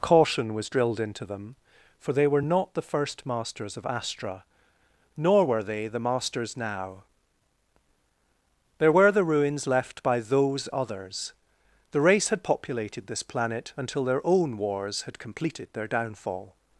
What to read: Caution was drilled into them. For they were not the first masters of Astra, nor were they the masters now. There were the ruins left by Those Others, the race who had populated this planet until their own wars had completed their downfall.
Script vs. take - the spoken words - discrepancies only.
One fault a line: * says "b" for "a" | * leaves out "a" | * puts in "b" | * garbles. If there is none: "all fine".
* leaves out "who"